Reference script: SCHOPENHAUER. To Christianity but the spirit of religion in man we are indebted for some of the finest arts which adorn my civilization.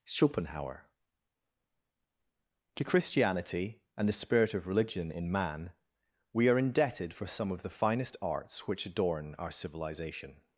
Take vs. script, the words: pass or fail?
fail